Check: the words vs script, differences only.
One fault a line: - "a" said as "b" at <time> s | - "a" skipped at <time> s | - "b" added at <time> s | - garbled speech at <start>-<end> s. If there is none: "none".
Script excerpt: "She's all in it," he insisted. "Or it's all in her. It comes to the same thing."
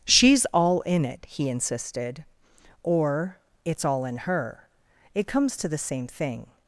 none